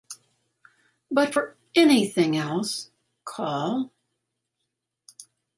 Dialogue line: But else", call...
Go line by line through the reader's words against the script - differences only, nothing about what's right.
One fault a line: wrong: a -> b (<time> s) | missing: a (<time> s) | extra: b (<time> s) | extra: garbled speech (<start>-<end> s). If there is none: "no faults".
extra: for anything (1.3 s)